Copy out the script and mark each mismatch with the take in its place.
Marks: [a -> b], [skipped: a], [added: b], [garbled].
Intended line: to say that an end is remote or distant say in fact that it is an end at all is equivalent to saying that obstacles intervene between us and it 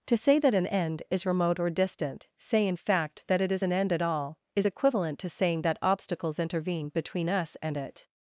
to say that an end is remote or distant say in fact that it is an end at all is equivalent to saying that obstacles intervene between us and it